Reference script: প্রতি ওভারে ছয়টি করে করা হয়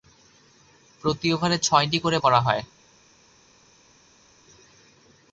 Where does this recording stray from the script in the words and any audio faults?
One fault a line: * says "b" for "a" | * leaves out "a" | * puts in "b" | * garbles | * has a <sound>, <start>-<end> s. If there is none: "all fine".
all fine